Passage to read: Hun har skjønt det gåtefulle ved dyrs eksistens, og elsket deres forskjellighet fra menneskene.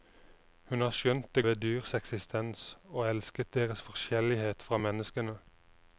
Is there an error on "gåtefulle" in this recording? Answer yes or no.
yes